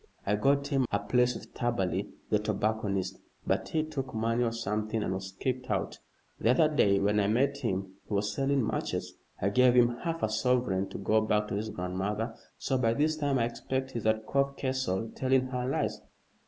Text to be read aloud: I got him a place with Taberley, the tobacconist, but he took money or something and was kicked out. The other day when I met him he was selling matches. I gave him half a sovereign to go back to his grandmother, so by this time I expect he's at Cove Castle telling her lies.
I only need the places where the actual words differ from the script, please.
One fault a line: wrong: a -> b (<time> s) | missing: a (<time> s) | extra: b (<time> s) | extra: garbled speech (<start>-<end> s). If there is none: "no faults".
no faults